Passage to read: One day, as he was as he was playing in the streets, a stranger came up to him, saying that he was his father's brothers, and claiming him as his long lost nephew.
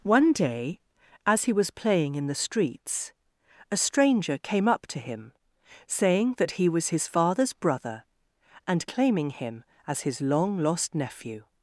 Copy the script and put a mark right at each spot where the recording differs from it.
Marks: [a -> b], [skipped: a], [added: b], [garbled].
One day, as he was [skipped: as he was] playing in the streets, a stranger came up to him, saying that he was his father's [brothers, -> brother] and claiming him as his long lost nephew.